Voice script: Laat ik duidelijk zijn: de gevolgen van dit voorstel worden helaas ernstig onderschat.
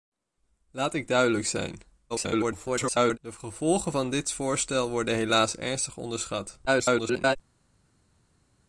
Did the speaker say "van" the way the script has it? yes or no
yes